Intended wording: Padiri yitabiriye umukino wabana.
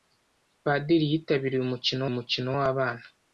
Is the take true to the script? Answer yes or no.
no